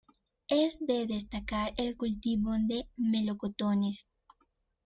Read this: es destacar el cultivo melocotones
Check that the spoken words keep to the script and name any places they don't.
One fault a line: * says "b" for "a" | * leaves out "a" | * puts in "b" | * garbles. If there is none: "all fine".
* puts in "de"
* puts in "de"